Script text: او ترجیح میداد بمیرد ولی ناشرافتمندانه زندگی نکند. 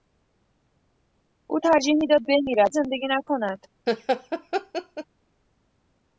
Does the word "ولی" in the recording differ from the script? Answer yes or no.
yes